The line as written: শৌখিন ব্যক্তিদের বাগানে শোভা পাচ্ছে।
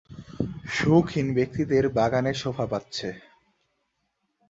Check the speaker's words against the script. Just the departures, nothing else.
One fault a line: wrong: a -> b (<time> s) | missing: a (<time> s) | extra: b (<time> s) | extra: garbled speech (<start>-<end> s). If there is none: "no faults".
no faults